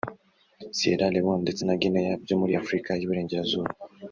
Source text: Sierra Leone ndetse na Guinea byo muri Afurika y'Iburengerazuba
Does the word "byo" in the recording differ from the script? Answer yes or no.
no